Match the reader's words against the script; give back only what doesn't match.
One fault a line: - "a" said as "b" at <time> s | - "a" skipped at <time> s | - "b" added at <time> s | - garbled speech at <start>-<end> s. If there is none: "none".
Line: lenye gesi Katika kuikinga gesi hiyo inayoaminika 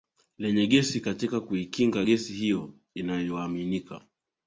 none